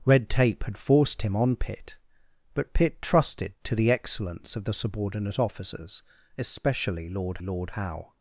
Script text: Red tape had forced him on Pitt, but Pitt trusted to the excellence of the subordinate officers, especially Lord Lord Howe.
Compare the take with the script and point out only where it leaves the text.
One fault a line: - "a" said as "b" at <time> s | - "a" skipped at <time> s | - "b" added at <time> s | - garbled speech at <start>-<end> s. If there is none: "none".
none